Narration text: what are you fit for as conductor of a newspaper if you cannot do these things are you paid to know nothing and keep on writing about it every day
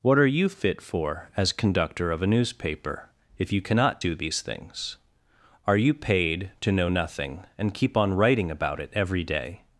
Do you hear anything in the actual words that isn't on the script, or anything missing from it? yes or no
no